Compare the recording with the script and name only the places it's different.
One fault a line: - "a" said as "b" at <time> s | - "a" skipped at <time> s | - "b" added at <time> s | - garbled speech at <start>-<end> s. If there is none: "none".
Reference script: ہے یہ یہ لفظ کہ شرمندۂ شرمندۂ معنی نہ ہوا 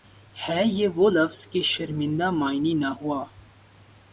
- "یہ" said as "وہ" at 0.9 s
- "شرمندۂ" skipped at 2.3 s